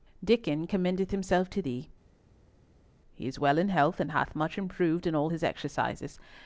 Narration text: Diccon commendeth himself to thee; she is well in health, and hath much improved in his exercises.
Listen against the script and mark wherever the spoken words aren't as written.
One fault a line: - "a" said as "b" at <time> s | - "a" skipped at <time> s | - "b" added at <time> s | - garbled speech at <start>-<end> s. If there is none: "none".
- "she" said as "he" at 3.1 s
- "all" added at 5.1 s